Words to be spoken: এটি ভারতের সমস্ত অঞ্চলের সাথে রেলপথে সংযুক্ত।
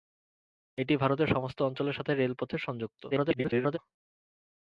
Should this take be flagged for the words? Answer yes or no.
yes